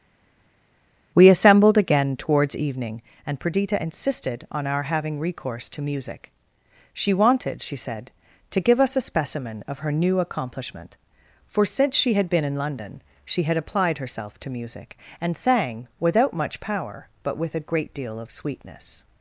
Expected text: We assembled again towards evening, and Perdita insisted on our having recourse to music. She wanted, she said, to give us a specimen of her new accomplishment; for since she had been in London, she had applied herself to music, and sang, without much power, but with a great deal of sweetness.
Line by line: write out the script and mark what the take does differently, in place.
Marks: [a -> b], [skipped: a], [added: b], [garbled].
We assembled again towards evening, and Perdita insisted on our having recourse to music. She wanted, she said, to give us a specimen of her new accomplishment; for since she had been in London, she had applied herself to music, and sang, without much power, but with a great deal of sweetness.